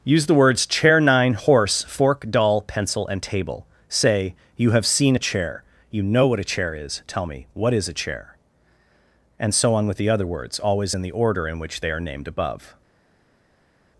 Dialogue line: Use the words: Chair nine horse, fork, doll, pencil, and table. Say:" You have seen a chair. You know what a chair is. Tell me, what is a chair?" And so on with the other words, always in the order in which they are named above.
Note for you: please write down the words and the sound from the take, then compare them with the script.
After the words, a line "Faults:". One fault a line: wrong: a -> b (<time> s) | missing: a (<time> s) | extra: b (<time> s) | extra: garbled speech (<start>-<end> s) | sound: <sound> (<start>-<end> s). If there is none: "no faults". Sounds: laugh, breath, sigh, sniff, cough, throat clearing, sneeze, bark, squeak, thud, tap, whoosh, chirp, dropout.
Use the words: Chair nine horse, fork, doll, pencil, and table. Say:" You have seen a chair. You know what a chair is. Tell me, what is a chair?" And so on with the other words, always in the order in which they are named above.
Faults:
no faults